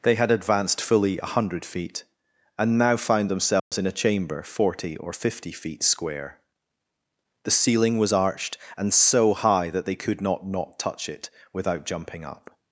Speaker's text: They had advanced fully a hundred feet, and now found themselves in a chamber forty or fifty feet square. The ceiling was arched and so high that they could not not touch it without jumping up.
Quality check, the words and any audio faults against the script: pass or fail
fail